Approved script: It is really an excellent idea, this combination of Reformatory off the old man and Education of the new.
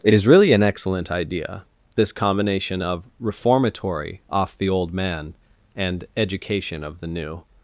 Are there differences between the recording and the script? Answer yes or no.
no